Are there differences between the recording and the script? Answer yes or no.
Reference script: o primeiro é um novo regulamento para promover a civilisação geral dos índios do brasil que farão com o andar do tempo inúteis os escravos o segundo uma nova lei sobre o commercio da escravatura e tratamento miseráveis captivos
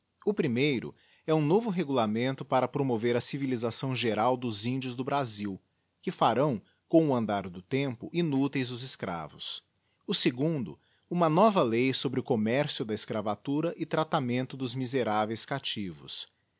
yes